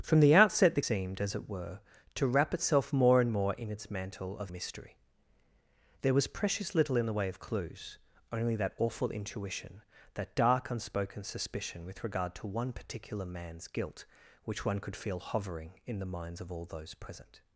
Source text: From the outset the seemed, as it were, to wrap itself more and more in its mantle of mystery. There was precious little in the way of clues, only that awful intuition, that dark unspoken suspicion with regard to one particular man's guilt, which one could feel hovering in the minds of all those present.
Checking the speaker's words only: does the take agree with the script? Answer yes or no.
yes